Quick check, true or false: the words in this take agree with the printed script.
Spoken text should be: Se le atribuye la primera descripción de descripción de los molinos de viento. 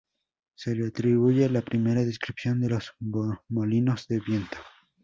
false